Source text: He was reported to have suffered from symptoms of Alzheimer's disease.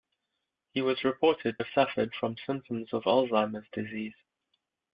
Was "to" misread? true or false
true